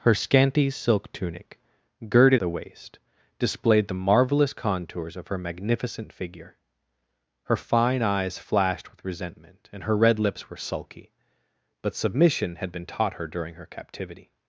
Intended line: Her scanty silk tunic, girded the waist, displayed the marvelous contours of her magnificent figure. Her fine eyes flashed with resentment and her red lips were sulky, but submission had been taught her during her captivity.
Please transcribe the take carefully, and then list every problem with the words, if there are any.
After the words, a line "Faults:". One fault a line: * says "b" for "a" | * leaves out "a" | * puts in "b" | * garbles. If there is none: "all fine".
Her scanty silk tunic, girded the waist, displayed the marvelous contours of her magnificent figure. Her fine eyes flashed with resentment and her red lips were sulky, but submission had been taught her during her captivity.
Faults:
all fine